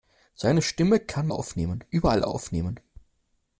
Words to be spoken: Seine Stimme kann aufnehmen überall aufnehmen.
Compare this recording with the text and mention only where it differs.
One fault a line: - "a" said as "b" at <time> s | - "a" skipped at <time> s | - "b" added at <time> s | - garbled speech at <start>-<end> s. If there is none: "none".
none